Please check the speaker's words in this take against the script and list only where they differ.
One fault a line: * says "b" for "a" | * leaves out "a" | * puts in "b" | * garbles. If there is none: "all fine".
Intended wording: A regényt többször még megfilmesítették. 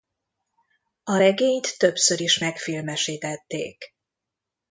* says "is" for "még"